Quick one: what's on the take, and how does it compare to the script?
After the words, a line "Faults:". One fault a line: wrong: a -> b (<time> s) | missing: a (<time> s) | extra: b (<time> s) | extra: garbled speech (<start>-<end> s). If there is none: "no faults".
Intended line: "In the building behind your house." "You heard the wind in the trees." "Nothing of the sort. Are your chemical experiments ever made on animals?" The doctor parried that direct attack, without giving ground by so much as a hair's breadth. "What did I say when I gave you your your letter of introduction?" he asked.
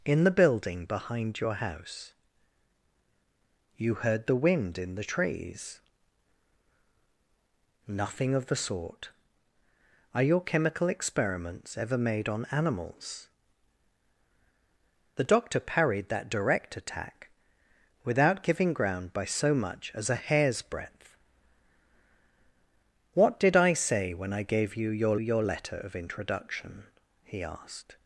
"In the building behind your house." "You heard the wind in the trees." "Nothing of the sort. Are your chemical experiments ever made on animals?" The doctor parried that direct attack, without giving ground by so much as a hair's breadth. "What did I say when I gave you your your letter of introduction?" he asked.
Faults:
no faults